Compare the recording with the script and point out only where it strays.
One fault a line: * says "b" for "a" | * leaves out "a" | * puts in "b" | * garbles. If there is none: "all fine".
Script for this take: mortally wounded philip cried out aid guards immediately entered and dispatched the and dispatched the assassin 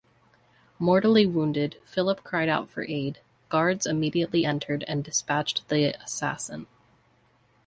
* puts in "for"
* leaves out "and dispatched the"